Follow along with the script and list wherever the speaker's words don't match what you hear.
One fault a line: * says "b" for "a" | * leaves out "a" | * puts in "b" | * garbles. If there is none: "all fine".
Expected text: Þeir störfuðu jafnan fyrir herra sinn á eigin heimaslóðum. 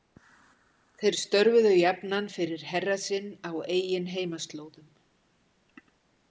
all fine